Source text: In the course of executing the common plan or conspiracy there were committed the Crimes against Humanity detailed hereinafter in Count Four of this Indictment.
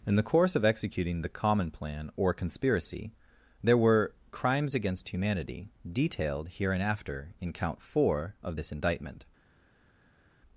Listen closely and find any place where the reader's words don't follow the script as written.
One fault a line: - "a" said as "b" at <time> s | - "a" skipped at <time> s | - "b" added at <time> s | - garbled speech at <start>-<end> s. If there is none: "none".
- "committed the" skipped at 4.2 s